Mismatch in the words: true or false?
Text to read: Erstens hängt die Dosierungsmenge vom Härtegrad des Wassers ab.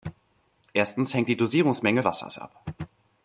true